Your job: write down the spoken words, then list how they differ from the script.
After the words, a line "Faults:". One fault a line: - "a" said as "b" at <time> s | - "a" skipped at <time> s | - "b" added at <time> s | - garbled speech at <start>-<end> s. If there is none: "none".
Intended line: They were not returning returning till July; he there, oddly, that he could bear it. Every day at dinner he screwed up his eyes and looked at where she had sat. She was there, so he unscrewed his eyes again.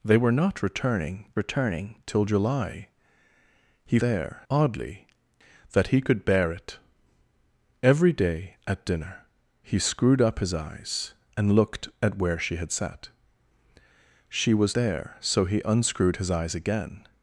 They were not returning returning till July; he there, oddly, that he could bear it. Every day at dinner he screwed up his eyes and looked at where she had sat. She was there, so he unscrewed his eyes again.
Faults:
none